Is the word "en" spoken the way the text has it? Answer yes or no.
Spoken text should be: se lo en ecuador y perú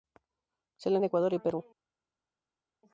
yes